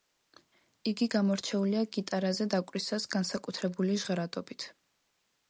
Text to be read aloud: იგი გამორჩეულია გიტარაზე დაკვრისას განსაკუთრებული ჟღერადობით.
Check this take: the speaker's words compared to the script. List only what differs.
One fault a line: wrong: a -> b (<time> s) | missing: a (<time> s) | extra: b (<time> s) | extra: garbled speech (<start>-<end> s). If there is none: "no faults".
no faults